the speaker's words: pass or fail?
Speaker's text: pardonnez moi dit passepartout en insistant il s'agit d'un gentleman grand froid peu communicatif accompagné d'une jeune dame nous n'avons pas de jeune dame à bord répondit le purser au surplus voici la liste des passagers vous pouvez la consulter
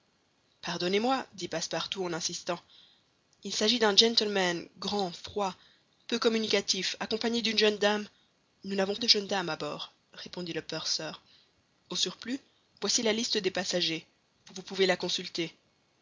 fail